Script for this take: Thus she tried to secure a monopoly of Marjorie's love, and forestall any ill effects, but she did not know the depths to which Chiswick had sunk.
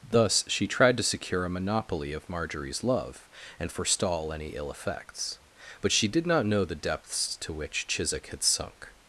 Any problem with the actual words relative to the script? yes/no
no